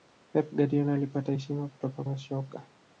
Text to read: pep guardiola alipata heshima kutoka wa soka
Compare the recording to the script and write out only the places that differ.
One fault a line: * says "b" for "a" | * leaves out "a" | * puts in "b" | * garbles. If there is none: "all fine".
all fine